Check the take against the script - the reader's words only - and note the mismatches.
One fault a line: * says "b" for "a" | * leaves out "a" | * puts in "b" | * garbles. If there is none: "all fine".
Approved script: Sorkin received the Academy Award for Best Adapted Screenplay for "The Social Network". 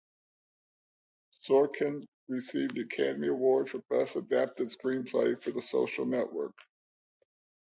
all fine